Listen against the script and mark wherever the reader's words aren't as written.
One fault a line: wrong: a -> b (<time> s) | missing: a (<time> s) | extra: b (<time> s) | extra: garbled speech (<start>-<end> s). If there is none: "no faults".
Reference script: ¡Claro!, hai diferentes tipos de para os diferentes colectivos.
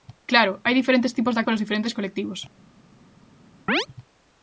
no faults